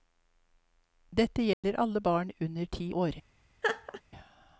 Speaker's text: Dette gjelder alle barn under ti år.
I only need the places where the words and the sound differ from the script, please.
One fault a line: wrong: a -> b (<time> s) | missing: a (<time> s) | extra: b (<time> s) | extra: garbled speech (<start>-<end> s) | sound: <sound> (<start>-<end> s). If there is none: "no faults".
sound: dropout (1.5-1.6 s)
sound: laugh (3.6-4.0 s)